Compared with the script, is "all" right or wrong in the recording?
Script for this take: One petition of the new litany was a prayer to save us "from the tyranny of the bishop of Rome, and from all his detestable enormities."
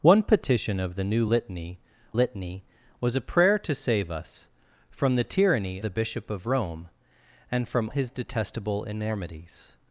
wrong